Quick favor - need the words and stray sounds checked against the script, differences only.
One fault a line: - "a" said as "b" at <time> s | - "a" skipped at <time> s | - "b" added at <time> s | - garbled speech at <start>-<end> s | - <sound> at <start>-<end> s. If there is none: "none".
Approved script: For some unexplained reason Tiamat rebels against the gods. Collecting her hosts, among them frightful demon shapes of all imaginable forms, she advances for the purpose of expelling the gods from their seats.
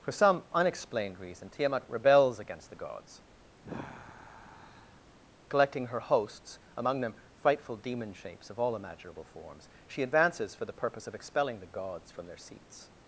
- sigh at 3.6-5.0 s